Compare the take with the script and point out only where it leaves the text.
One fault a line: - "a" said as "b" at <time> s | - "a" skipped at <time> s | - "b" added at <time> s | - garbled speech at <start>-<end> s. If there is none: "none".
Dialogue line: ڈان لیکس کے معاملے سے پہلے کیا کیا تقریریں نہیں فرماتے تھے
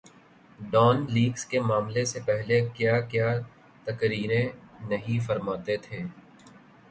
none